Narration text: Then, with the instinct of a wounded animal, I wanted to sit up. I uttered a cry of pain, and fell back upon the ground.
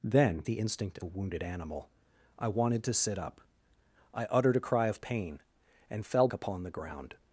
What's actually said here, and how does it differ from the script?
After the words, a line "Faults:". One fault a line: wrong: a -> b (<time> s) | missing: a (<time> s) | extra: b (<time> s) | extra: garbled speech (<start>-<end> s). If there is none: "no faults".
Then, the instinct a wounded animal, I wanted to sit up. I uttered a cry of pain, and fell upon the ground.
Faults:
missing: with (0.4 s)
missing: of (1.0 s)
missing: back (6.3 s)